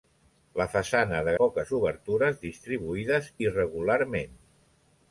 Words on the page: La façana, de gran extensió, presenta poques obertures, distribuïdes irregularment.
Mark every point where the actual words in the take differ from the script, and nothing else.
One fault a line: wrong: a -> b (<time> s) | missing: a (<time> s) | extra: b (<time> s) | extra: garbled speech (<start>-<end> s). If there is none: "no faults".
missing: gran extensió presenta (1.3 s)